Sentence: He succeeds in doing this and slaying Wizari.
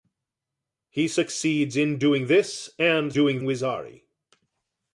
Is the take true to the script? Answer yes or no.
no